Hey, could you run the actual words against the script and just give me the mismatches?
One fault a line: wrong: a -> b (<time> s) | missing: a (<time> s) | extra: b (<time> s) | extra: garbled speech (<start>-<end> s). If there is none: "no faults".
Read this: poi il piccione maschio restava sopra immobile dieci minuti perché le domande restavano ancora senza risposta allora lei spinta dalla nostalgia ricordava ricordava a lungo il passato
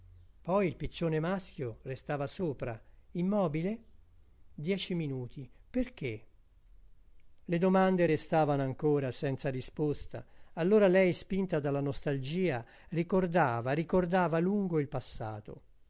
no faults